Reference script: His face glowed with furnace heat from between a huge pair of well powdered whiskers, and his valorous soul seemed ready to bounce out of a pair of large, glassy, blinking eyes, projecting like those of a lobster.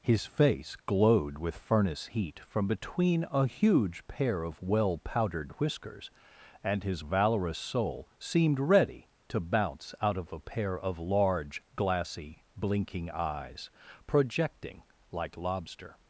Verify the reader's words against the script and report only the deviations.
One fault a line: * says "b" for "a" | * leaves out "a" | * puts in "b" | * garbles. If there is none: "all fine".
* leaves out "those of a"